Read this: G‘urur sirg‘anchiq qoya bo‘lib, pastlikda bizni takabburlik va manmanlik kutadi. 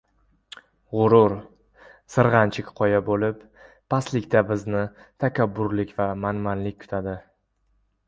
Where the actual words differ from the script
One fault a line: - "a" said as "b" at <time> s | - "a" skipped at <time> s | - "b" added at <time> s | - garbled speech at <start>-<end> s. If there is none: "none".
none